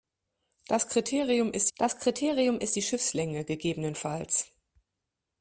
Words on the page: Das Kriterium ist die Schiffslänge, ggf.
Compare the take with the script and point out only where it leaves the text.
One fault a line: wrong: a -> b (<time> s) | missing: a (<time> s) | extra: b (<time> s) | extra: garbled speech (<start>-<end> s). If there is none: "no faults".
extra: das Kriterium ist (1.8 s)